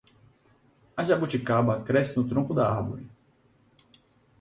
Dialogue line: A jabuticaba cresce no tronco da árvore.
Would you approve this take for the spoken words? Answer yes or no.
yes